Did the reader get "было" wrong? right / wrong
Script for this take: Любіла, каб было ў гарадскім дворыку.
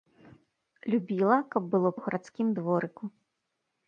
right